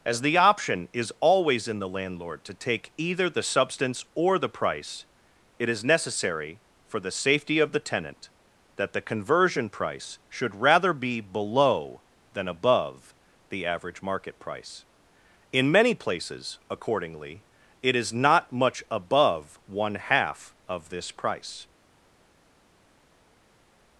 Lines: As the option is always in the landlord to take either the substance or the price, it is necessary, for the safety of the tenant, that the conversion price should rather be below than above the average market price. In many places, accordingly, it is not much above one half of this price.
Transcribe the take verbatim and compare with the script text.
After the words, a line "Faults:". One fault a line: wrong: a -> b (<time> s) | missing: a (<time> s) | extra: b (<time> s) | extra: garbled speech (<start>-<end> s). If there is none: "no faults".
As the option is always in the landlord to take either the substance or the price, it is necessary, for the safety of the tenant, that the conversion price should rather be below than above the average market price. In many places, accordingly, it is not much above one half of this price.
Faults:
no faults